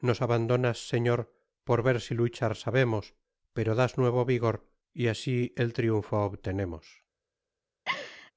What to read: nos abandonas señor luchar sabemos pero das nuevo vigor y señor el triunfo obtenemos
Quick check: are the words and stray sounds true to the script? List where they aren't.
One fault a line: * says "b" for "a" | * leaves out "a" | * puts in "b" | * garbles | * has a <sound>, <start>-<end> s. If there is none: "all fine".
* puts in "por ver si"
* says "asi" for "señor"
* has a laugh, 7.8-8.3 s